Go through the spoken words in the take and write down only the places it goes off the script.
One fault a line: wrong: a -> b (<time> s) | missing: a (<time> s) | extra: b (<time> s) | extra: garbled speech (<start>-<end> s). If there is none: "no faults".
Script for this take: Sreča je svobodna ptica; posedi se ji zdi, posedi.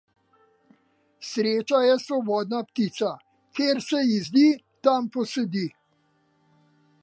wrong: posedi -> kjer (3.6 s)
extra: tam (4.8 s)